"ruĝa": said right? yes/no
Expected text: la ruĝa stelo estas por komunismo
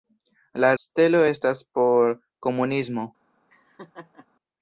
no